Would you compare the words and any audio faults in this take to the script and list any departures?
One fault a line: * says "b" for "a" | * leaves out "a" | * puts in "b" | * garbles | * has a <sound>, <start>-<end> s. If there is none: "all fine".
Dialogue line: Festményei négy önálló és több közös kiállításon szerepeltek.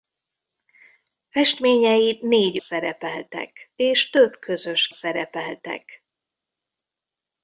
* says "szerepeltek" for "önálló"
* leaves out "kiállításon"